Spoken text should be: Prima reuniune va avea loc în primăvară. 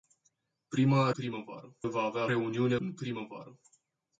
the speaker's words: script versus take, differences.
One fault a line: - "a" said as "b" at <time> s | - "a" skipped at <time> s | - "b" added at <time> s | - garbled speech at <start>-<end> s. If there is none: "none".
- "reuniune" said as "primăvară" at 1.1 s
- "loc" said as "reuniune" at 2.3 s